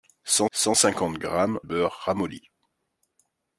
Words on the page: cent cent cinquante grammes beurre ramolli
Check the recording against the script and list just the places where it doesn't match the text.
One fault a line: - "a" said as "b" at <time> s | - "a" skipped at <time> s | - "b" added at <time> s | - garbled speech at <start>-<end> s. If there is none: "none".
none